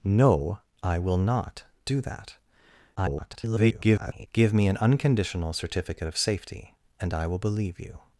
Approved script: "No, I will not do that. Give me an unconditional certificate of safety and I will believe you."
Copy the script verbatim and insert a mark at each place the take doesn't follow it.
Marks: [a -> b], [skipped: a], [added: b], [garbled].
"No, I will not do that. [garbled] Give me an unconditional certificate of safety and I will believe you."